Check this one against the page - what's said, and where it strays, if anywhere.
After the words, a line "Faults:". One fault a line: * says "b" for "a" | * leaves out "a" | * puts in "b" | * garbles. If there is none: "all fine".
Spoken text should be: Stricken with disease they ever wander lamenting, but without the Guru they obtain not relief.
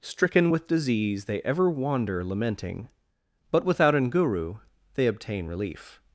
Stricken with disease they ever wander lamenting, but without an Guru they obtain relief.
Faults:
* says "an" for "the"
* leaves out "not"